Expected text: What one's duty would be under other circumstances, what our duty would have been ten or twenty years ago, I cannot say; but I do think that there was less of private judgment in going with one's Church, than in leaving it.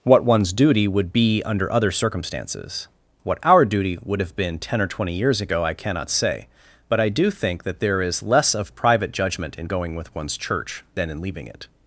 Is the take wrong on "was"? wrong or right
wrong